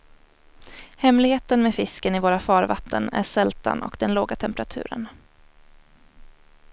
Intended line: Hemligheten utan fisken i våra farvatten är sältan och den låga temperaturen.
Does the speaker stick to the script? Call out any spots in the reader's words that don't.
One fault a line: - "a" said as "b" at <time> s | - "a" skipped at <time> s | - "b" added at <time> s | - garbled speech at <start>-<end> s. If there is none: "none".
- "utan" said as "med" at 1.6 s